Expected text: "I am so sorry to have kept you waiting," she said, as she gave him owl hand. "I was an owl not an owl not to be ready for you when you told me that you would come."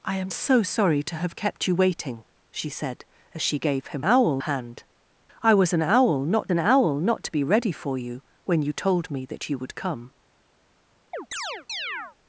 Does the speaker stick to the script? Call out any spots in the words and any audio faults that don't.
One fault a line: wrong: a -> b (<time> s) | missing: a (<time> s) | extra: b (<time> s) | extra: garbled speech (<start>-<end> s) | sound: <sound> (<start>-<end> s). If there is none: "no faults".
sound: chirp (11.1-12.2 s)